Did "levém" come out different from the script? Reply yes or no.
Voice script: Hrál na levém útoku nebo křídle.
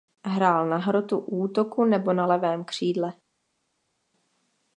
yes